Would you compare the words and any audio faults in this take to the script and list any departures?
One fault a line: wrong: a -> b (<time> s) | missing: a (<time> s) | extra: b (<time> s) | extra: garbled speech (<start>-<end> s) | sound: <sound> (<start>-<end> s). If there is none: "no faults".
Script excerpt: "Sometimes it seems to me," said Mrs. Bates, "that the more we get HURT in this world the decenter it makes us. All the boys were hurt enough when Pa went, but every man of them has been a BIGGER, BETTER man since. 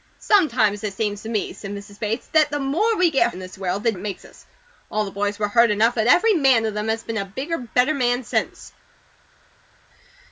missing: HURT (3.3 s)
missing: decenter (3.9 s)
missing: when Pa went (5.9 s)